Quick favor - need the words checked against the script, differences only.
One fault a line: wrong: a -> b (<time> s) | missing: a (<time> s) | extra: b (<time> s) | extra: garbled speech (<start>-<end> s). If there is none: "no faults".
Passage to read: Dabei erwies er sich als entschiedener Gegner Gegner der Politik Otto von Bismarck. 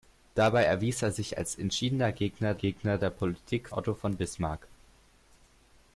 no faults